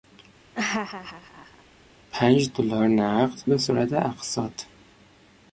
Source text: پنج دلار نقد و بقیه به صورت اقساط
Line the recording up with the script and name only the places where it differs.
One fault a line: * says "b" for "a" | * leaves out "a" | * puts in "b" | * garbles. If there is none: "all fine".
* leaves out "و بقیه"